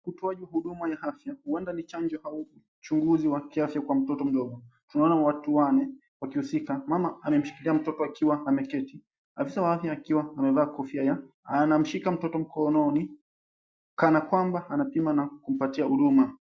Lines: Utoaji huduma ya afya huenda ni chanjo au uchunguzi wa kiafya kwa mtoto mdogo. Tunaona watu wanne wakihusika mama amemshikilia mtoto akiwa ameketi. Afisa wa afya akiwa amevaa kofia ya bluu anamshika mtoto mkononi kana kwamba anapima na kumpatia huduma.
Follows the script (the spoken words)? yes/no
no